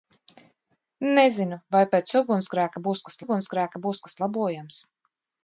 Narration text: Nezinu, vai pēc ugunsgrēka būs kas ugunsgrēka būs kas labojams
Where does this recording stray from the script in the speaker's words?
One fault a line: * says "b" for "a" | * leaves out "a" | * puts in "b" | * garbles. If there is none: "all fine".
all fine